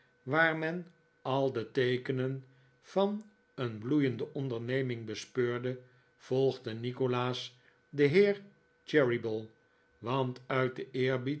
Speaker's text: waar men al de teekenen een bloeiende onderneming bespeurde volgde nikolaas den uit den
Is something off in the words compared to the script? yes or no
yes